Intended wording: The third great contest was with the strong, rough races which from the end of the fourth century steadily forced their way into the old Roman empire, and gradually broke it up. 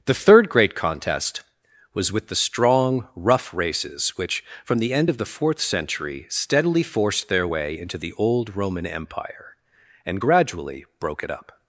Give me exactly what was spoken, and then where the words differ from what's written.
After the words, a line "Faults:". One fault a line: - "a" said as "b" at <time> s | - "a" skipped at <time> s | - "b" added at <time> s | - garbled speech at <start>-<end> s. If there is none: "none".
The third great contest was with the strong, rough races which from the end of the fourth century steadily forced their way into the old Roman empire, and gradually broke it up.
Faults:
none